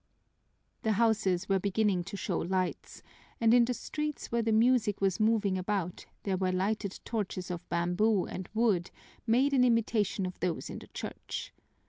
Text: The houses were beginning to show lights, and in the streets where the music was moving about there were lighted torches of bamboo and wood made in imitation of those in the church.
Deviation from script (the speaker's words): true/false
false